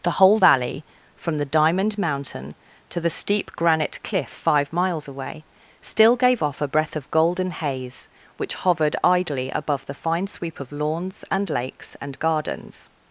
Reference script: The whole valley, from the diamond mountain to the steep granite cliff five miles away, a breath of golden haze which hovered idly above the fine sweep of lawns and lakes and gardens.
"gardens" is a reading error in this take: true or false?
false